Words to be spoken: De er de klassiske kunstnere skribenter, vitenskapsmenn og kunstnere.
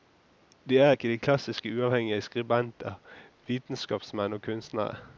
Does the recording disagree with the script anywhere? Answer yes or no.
yes